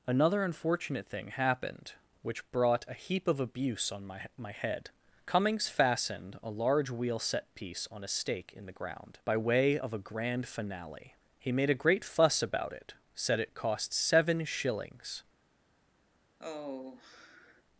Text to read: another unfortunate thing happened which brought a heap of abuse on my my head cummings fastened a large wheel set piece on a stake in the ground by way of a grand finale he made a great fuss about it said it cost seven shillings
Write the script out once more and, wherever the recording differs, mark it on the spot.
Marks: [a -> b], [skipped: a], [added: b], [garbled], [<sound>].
another unfortunate thing happened which brought a heap of abuse on my my head cummings fastened a large wheel set piece on a stake in the ground by way of a grand finale he made a great fuss about it said it cost seven shillings [sigh]